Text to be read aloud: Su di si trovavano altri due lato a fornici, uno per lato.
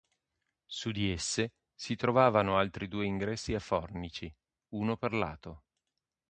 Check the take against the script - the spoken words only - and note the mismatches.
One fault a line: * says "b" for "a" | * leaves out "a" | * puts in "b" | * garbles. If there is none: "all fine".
* puts in "esse"
* says "ingressi" for "lato"